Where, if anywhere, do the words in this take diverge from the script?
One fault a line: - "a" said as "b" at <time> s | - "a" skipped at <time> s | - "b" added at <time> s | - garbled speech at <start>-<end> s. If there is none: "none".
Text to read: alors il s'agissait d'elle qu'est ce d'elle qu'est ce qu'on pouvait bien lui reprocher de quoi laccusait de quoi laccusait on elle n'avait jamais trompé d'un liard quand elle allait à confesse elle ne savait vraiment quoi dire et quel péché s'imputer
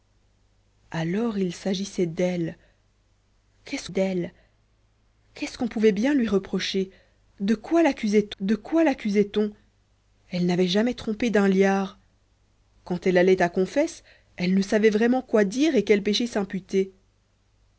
none